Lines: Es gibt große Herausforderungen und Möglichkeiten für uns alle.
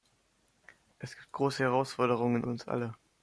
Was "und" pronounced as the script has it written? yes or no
no